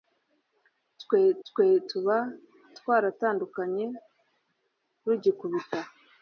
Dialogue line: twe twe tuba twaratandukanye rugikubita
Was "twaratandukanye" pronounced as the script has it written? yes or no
yes